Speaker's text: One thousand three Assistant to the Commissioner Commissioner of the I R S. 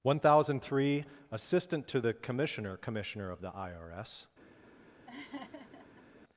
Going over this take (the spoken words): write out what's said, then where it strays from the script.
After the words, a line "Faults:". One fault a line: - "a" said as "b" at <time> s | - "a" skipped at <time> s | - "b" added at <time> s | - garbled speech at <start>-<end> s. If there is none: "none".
One thousand three Assistant to the Commissioner Commissioner of the I R S.
Faults:
none